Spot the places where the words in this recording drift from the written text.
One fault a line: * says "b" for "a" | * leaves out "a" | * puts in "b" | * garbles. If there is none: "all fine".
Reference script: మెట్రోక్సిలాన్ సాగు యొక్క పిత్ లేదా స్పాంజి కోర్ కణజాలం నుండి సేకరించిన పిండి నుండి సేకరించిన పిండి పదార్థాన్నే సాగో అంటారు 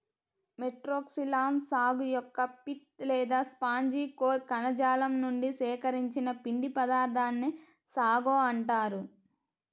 * leaves out "నుండి సేకరించిన పిండి"